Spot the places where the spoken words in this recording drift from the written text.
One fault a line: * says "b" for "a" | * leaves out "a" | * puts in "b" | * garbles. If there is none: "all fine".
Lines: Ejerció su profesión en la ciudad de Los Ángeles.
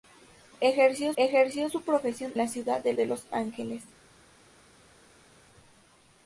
* puts in "ejerció"
* leaves out "en"
* puts in "de"